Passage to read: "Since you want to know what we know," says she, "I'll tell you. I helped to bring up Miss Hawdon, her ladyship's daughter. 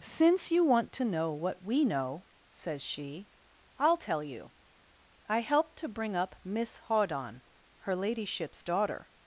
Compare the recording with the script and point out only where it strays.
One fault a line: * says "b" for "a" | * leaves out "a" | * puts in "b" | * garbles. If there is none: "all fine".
all fine